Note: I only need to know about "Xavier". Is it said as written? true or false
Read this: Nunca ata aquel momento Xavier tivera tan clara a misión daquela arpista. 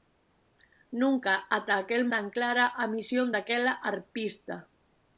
false